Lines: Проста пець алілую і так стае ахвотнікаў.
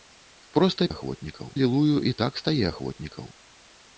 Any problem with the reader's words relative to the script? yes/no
yes